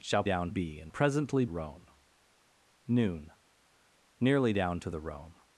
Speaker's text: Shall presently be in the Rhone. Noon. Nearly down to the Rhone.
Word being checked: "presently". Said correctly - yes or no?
no